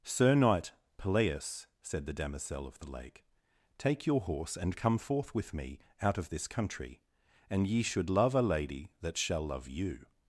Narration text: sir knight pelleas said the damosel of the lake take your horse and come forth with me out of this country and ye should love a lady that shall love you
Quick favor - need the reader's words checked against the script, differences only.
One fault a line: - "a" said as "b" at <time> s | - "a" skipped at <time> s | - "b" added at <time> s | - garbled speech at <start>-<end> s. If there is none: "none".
none